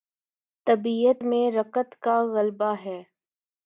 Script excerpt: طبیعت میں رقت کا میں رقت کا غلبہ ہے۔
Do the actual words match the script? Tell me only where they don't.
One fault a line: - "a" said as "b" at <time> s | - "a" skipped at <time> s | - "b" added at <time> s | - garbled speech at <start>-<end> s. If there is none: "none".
- "میں رقت کا" skipped at 2.2 s